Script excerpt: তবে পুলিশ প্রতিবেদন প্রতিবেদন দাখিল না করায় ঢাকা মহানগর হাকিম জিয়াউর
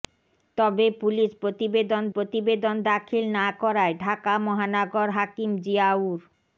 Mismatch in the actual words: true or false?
false